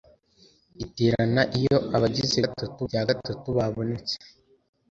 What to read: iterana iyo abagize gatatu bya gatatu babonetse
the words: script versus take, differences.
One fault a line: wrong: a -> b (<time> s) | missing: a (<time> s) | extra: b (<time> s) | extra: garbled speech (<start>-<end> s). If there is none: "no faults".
no faults